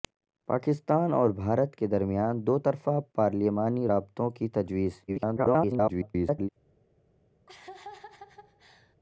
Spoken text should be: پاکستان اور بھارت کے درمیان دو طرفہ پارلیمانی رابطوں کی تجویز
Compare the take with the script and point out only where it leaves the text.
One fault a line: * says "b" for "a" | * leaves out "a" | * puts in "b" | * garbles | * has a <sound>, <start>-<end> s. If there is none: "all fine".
* garbles
* has a laugh, 7.5-9.0 s